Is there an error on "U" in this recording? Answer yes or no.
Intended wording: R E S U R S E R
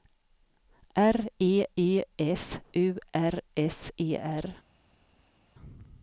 no